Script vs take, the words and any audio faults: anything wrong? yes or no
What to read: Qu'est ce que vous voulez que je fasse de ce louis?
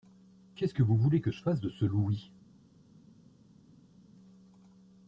no